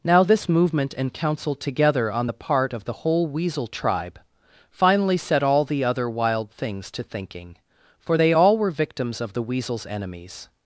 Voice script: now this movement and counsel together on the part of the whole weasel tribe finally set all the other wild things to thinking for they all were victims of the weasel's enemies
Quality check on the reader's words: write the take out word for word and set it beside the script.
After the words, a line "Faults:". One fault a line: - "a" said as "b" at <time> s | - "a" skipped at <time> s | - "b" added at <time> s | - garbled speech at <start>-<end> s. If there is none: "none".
now this movement and counsel together on the part of the whole weasel tribe finally set all the other wild things to thinking for they all were victims of the weasel's enemies
Faults:
none